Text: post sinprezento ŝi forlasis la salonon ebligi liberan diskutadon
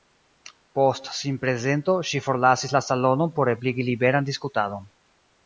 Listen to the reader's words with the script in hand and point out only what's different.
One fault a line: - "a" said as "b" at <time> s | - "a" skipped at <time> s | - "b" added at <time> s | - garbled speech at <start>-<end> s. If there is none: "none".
- "por" added at 3.4 s